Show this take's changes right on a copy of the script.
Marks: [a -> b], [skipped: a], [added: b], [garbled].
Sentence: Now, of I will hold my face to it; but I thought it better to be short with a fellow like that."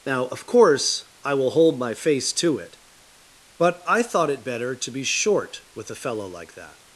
Now, of [added: course] I will hold my face to it; but I thought it better to be short with a fellow like that."